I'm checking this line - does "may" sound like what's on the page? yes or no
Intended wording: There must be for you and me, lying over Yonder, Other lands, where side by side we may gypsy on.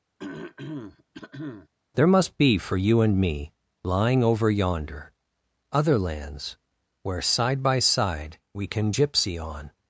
no